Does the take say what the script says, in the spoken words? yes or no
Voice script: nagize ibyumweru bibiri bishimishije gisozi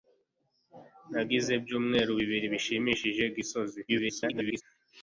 no